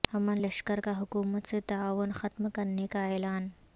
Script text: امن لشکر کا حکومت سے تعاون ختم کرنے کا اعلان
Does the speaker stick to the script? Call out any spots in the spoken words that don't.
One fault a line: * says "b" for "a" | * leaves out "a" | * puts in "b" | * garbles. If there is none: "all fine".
all fine